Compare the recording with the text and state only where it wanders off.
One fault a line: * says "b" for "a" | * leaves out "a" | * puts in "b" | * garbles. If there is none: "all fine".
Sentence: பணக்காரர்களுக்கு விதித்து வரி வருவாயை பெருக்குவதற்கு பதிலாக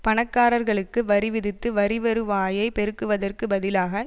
* puts in "வரி"